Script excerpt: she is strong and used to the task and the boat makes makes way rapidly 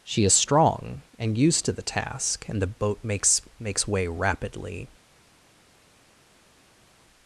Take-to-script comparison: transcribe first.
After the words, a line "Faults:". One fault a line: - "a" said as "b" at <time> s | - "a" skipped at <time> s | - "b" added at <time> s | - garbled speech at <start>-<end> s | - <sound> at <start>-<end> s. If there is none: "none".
she is strong and used to the task and the boat makes makes way rapidly
Faults:
none